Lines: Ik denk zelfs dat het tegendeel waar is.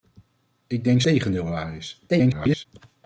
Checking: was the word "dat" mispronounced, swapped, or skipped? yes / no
yes